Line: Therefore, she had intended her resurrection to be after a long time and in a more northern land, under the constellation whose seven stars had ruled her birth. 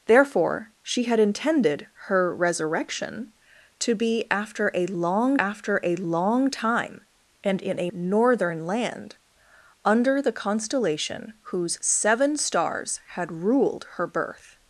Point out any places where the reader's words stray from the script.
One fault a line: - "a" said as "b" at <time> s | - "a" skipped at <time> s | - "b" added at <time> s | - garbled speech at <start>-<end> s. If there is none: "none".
- "after a long" added at 5.4 s
- "more" skipped at 7.9 s